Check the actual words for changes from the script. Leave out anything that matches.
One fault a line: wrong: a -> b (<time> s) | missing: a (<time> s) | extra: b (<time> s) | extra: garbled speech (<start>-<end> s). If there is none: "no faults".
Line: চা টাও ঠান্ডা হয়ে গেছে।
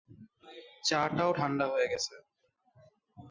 no faults